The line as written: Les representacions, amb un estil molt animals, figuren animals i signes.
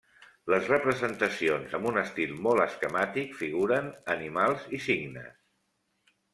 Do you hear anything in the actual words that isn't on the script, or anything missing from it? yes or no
yes